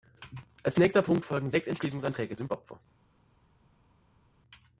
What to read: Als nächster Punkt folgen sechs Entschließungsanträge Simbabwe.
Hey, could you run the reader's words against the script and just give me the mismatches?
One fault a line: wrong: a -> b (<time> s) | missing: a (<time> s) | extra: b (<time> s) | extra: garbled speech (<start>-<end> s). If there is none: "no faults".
no faults